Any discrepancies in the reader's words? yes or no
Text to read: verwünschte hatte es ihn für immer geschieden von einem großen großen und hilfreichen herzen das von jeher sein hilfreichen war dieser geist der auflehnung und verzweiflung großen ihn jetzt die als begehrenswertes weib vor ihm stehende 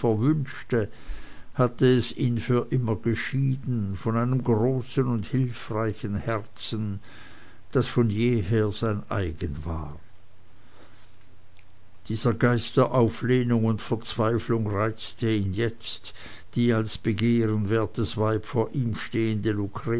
yes